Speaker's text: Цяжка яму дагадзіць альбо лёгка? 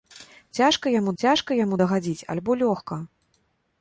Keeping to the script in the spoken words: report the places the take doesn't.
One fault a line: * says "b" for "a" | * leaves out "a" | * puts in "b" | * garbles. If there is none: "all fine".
* puts in "цяжка яму"